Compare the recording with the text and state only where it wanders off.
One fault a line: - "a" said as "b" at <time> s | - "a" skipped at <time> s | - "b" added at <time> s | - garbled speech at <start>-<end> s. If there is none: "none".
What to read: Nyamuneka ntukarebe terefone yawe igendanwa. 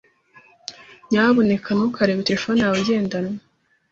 none